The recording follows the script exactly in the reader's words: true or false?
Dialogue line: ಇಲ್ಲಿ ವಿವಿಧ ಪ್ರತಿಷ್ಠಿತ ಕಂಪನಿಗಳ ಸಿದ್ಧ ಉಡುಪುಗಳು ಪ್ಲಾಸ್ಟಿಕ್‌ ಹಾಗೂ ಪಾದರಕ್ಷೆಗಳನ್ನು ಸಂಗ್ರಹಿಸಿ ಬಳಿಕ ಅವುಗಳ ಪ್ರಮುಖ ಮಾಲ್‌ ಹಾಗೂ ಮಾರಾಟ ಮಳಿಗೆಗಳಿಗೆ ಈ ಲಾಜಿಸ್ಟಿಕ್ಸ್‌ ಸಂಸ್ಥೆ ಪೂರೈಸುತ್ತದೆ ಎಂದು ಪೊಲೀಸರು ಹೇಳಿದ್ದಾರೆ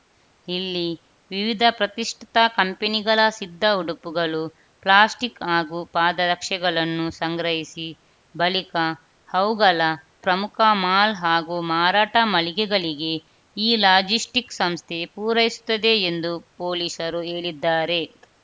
true